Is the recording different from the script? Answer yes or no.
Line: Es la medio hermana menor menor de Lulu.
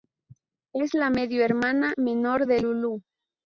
yes